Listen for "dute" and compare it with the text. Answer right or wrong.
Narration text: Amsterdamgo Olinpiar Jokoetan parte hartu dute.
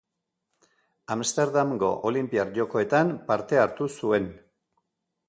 wrong